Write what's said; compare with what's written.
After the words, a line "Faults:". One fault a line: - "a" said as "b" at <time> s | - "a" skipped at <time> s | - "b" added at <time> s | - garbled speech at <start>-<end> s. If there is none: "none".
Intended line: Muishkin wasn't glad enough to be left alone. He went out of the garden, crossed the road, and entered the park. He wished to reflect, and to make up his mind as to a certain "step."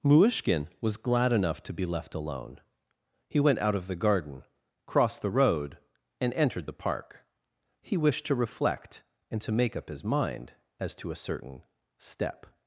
Muishkin was glad enough to be left alone. He went out of the garden, crossed the road, and entered the park. He wished to reflect, and to make up his mind as to a certain "step."
Faults:
- "wasn't" said as "was" at 0.8 s